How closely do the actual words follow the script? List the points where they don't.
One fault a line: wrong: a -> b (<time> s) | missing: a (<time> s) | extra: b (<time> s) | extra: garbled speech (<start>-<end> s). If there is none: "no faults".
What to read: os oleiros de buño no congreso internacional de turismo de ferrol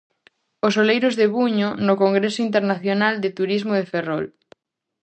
no faults